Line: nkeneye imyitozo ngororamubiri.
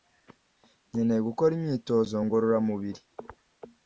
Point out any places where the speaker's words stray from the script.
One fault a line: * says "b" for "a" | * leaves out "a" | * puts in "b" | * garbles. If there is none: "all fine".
* puts in "gukora"